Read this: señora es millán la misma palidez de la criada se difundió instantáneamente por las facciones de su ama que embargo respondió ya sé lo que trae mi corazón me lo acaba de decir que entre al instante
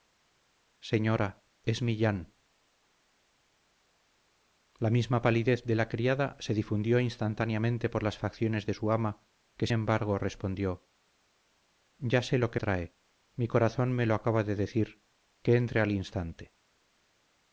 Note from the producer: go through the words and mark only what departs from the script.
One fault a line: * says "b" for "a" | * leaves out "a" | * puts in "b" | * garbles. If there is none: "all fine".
all fine